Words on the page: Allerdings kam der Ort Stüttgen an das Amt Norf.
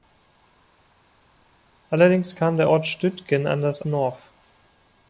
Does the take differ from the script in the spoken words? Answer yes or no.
yes